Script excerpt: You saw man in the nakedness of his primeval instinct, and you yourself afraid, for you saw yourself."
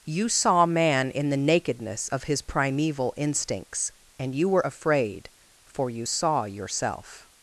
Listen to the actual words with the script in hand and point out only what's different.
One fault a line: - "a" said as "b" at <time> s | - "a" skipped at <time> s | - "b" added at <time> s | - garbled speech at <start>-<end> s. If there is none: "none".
- "instinct" said as "instincts" at 3.2 s
- "yourself" said as "were" at 4.5 s